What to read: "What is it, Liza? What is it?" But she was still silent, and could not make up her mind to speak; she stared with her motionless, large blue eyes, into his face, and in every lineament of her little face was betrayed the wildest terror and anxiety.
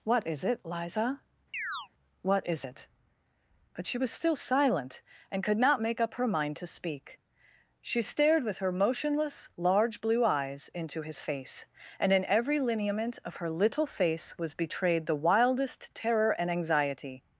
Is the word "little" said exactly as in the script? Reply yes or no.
yes